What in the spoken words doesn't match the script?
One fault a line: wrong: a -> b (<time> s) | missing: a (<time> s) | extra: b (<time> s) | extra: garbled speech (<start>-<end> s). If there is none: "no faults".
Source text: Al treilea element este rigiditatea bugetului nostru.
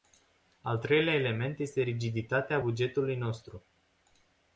no faults